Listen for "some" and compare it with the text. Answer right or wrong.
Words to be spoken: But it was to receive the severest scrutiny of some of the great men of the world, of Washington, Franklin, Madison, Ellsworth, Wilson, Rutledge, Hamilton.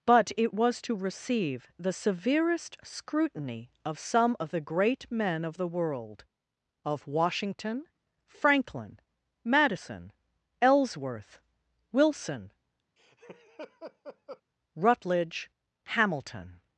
right